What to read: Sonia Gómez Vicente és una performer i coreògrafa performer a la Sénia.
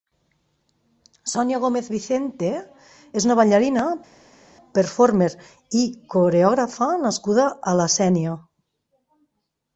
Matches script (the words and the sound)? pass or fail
fail